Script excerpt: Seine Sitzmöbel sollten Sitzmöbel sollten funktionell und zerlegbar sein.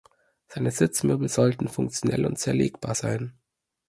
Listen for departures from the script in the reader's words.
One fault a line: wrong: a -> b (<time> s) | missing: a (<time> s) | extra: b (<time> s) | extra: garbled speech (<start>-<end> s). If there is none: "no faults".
missing: Sitzmöbel sollten (1.7 s)